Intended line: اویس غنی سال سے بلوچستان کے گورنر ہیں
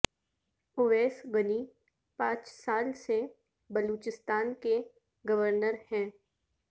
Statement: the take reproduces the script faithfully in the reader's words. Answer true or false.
false